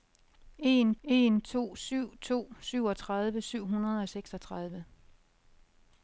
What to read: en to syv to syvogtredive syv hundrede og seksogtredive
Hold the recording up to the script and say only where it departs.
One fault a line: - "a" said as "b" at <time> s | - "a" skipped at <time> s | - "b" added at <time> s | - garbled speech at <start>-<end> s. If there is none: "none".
- "en" added at 1.0 s